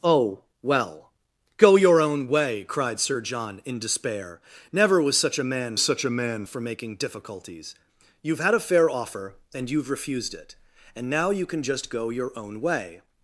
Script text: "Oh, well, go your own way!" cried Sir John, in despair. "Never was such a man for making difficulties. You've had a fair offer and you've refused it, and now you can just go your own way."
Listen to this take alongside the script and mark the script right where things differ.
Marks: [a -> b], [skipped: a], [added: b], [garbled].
"Oh, well, go your own way!" cried Sir John, in despair. "Never was such a man [added: such a man] for making difficulties. You've had a fair offer and you've refused it, and now you can just go your own way."